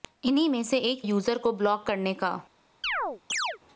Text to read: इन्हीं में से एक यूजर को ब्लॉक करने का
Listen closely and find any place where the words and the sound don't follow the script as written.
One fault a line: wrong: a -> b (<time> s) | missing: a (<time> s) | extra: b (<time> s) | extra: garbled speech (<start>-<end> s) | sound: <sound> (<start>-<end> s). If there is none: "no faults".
sound: chirp (2.8-3.6 s)